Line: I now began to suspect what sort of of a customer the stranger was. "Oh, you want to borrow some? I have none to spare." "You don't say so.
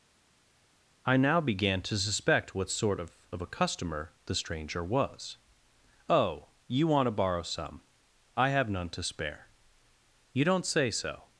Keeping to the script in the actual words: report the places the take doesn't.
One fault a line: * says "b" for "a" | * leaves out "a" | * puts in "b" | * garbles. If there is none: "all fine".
all fine